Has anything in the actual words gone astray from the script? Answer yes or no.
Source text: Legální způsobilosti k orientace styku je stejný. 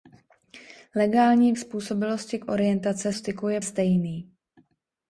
no